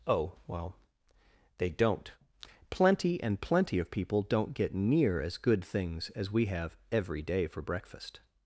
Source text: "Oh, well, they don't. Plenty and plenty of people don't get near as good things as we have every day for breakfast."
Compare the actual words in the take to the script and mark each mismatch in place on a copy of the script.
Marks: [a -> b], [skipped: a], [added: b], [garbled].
"Oh, well, they don't. Plenty and plenty of people don't get near as good things as we have every day for breakfast."